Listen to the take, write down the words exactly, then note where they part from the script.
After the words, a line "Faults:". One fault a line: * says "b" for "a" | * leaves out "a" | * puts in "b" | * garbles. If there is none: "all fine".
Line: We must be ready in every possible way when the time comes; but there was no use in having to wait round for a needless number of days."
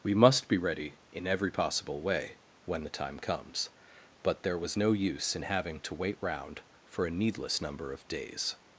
We must be ready in every possible way when the time comes; but there was no use in having to wait round for a needless number of days."
Faults:
all fine